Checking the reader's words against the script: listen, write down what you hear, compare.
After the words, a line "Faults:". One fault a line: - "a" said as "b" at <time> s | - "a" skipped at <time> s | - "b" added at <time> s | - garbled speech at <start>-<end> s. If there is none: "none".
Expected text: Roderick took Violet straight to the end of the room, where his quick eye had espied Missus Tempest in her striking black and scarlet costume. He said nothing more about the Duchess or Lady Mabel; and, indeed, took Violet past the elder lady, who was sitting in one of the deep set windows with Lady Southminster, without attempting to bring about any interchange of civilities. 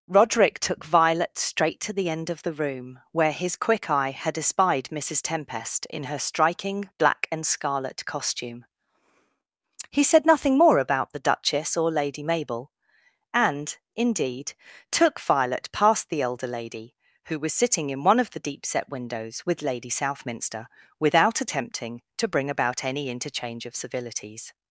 Roderick took Violet straight to the end of the room, where his quick eye had espied Missus Tempest in her striking black and scarlet costume. He said nothing more about the Duchess or Lady Mabel; and, indeed, took Violet past the elder lady, who was sitting in one of the deep set windows with Lady Southminster, without attempting to bring about any interchange of civilities.
Faults:
none